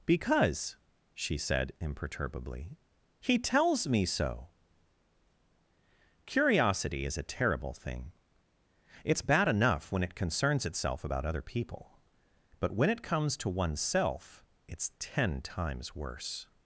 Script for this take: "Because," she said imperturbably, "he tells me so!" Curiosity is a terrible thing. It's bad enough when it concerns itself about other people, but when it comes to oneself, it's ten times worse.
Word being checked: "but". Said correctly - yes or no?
yes